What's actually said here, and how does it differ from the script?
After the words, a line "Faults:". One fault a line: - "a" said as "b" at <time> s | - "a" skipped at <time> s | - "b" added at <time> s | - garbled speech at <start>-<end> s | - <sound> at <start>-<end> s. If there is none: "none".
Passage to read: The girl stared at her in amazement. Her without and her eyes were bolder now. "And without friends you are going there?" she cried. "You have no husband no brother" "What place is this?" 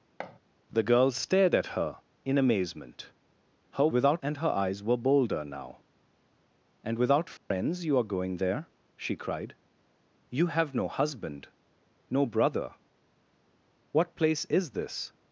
The girl stared at her in amazement. Her without and her eyes were bolder now. "And without friends you are going there?" she cried. "You have no husband no brother" "What place is this?"
Faults:
- thud at 0.2-0.4 s
- dropout at 7.4-7.5 s